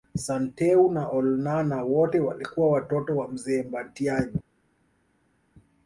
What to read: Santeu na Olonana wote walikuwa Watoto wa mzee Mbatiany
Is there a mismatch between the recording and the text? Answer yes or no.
no